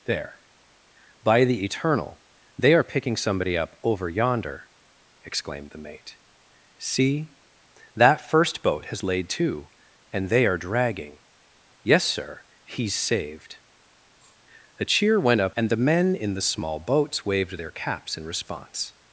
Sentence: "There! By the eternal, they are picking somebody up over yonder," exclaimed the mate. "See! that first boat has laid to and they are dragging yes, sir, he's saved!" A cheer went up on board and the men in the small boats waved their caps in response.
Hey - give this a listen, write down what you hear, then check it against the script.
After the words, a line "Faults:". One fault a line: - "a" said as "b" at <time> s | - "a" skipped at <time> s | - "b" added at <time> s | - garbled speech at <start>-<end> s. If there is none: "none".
"There! By the eternal, they are picking somebody up over yonder," exclaimed the mate. "See! that first boat has laid to and they are dragging yes, sir, he's saved!" A cheer went up and the men in the small boats waved their caps in response.
Faults:
- "on board" skipped at 15.6 s